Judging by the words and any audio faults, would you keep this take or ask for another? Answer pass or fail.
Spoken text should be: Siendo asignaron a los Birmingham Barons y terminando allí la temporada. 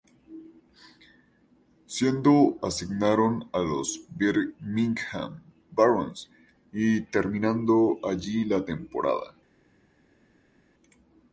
pass